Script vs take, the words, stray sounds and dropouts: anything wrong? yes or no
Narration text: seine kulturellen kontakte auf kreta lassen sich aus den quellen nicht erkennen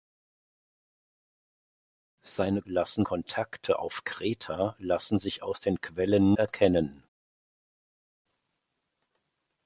yes